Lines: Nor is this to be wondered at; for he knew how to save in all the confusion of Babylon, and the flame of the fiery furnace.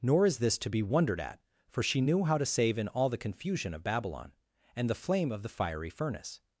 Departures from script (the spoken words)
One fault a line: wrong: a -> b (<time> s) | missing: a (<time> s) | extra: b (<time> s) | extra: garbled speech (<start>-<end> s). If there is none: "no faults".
wrong: he -> she (1.8 s)